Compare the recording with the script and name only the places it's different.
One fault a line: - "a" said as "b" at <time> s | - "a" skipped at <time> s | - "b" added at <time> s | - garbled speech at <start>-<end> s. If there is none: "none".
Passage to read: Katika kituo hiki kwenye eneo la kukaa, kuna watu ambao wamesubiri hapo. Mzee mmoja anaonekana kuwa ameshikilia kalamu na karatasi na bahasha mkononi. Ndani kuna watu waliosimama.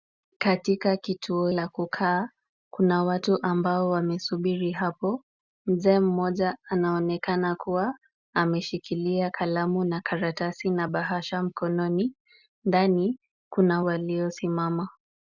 - "hiki kwenye eneo" skipped at 1.5 s
- "watu" skipped at 13.8 s